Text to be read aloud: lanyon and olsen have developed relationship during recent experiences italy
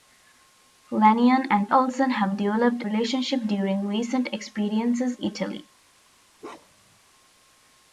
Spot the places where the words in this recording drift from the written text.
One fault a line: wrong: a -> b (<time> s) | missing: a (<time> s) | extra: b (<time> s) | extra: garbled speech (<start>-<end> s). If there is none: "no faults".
no faults